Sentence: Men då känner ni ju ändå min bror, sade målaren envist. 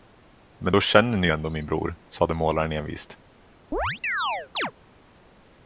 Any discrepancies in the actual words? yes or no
no